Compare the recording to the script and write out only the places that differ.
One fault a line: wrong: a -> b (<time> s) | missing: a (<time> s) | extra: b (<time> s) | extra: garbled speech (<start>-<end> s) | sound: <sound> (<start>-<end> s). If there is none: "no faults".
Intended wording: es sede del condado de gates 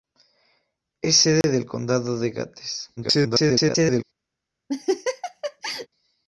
sound: dropout (1.4-1.4 s)
extra: garbled speech (3.0-4.0 s)
sound: laugh (4.7-5.9 s)